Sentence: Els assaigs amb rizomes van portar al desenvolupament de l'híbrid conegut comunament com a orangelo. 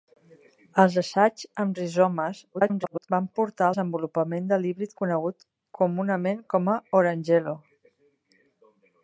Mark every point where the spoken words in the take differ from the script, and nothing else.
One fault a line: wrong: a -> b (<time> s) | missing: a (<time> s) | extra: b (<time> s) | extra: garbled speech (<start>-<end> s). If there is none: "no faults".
extra: garbled speech (2.5-3.1 s)
missing: al (3.7 s)